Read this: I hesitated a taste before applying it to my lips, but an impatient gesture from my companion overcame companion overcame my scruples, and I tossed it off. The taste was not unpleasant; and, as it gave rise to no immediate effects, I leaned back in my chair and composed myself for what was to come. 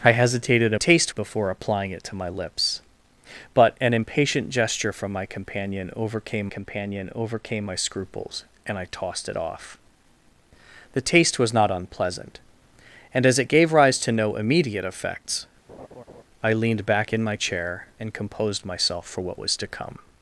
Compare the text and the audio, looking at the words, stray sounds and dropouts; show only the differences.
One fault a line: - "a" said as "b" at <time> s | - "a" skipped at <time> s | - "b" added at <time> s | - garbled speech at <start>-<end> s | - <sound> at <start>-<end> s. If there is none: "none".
- laugh at 15.7-16.2 s